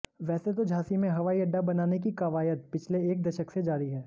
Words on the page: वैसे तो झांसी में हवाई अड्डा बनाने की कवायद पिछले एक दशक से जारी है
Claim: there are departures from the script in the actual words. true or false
false